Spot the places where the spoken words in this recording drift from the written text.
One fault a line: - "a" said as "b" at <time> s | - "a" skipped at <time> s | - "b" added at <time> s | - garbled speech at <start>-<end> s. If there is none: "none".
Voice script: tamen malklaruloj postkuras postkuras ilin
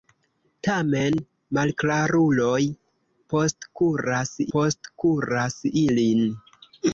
none